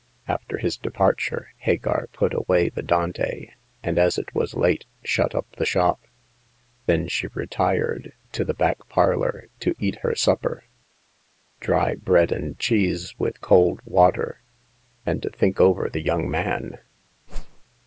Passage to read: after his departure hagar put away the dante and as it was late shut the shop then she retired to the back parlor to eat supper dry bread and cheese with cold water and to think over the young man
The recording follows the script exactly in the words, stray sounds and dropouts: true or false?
false